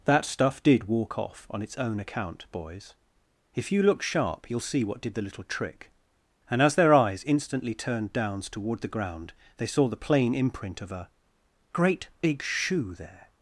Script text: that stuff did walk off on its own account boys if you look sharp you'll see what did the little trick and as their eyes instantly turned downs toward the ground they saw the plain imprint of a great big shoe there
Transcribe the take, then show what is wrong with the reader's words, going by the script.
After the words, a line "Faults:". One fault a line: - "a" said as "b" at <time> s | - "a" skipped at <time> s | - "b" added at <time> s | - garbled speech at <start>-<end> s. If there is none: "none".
that stuff did walk off on its own account boys if you look sharp you'll see what did the little trick and as their eyes instantly turned downs toward the ground they saw the plain imprint of a great big shoe there
Faults:
none